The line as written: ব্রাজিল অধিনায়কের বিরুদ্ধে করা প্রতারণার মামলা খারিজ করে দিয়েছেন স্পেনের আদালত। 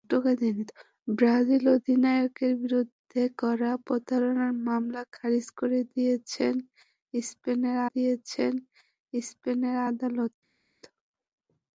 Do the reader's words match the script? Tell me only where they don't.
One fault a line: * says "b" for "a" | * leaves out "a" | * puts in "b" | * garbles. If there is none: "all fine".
* puts in "দিয়েছেন স্পেনের"